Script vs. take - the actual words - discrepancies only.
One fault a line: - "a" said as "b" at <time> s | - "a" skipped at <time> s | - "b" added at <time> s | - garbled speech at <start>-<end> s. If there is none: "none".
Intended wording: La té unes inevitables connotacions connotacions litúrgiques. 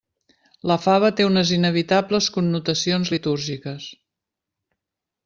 - "fava" added at 0.8 s
- "connotacions" skipped at 3.1 s